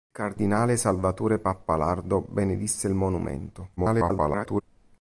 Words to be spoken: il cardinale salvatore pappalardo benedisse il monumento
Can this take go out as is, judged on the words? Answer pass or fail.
fail